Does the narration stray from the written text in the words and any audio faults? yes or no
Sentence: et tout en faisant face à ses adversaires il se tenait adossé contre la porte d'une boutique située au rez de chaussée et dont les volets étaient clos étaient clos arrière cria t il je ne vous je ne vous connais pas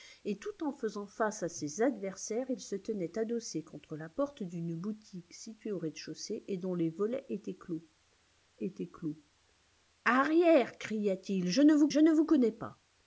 no